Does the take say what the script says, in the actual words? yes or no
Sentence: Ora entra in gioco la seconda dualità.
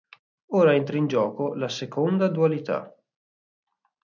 yes